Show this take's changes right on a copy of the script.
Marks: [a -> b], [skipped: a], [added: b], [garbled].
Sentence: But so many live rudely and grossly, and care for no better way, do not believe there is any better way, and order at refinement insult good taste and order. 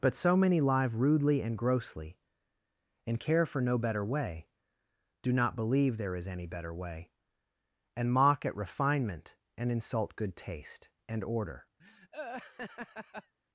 But so many live rudely and grossly, and care for no better way, do not believe there is any better way, and [order -> mock] at refinement [added: and] insult good taste and order.